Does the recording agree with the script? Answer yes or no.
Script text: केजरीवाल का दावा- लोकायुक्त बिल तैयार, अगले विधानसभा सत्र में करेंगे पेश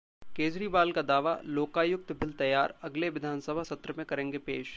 yes